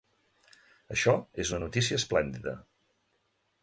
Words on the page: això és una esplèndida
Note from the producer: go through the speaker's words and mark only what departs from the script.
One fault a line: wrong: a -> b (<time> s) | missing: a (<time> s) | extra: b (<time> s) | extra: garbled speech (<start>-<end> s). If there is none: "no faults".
extra: notícia (1.6 s)